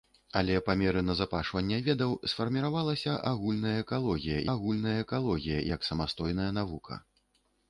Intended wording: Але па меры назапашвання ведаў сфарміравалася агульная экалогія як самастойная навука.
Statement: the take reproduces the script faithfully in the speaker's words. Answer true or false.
false